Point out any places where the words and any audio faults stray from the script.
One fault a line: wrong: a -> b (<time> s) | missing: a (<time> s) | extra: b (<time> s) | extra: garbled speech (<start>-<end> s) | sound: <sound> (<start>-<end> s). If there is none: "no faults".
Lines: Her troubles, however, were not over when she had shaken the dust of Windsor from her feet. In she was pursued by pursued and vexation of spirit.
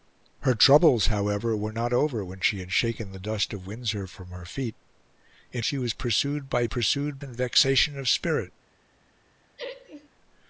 sound: laugh (9.6-10.1 s)